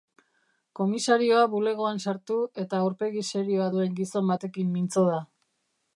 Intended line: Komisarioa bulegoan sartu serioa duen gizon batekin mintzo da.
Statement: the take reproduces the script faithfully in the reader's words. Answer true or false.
false